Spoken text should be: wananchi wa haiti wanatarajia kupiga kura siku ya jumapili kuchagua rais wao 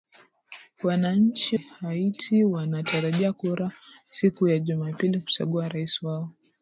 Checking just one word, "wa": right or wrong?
wrong